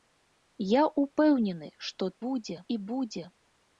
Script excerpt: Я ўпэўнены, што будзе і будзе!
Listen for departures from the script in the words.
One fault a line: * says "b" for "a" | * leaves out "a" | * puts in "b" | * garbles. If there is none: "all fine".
all fine